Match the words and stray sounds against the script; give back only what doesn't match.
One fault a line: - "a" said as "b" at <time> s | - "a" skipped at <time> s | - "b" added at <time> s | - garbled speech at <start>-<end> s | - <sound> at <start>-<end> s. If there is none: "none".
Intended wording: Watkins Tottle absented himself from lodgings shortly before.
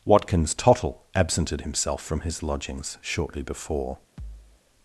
- "his" added at 2.2 s
- thud at 4.2-4.6 s